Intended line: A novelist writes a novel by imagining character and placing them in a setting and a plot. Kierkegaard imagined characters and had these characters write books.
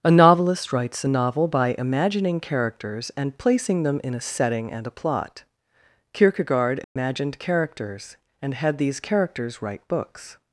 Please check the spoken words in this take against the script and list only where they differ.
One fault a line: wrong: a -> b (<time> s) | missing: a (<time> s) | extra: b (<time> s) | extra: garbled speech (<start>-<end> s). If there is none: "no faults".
wrong: character -> characters (2.4 s)